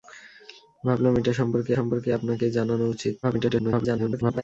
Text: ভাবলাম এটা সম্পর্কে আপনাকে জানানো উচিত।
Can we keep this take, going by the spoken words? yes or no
no